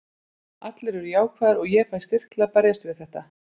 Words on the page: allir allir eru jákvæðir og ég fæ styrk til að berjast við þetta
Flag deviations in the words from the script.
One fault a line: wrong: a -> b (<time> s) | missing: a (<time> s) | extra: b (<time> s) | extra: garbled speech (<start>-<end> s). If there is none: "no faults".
missing: allir (1.0 s)